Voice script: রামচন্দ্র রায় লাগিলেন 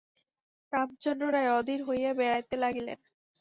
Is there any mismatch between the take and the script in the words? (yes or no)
yes